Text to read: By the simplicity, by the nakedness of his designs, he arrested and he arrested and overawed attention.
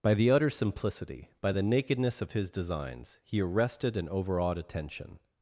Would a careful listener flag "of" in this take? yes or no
no